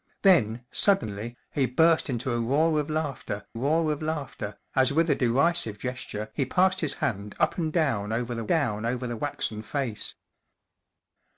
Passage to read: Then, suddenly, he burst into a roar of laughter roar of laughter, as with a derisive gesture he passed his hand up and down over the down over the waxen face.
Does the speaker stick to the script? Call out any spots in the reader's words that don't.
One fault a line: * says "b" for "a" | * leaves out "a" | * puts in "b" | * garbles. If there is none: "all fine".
all fine